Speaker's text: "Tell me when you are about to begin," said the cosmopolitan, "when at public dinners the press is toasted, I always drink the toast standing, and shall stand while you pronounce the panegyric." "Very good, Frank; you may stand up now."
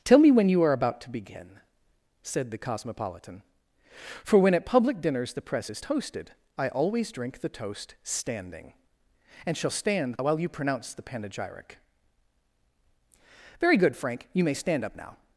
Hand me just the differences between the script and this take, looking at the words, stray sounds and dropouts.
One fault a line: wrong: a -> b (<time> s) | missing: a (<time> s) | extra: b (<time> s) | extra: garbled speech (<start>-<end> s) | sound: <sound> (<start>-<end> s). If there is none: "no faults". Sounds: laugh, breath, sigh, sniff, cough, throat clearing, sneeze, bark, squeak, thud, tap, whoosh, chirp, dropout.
extra: for (4.2 s)